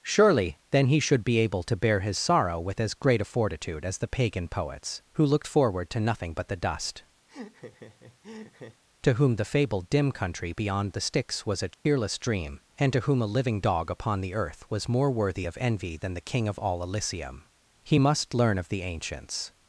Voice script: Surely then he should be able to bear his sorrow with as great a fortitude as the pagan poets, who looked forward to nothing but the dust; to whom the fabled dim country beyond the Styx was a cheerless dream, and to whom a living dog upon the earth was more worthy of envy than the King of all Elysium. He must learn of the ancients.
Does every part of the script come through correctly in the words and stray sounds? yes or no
no